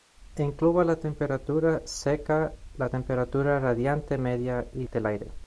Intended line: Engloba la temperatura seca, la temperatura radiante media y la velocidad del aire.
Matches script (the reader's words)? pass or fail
fail